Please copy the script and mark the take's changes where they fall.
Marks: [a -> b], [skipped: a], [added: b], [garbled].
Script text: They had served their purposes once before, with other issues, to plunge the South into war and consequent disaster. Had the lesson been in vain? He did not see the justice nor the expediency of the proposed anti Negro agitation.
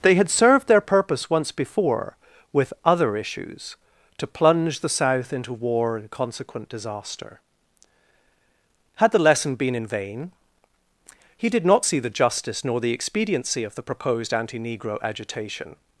They had served their [purposes -> purpose] once before, with other issues, to plunge the South into war and consequent disaster. Had the lesson been in vain? He did not see the justice nor the expediency of the proposed anti Negro agitation.